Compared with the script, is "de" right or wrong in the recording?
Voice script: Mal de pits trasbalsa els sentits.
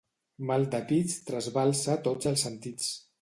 right